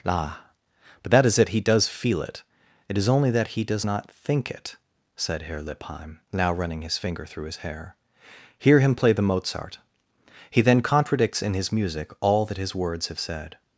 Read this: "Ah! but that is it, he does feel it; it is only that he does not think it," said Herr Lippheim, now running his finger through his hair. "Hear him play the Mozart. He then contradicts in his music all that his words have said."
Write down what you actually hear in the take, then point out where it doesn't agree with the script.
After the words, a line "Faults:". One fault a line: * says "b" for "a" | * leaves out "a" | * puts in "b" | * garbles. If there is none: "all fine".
"Ah! but that is it, he does feel it; it is only that he does not think it," said Herr Lippheim, now running his finger through his hair. "Hear him play the Mozart. He then contradicts in his music all that his words have said."
Faults:
all fine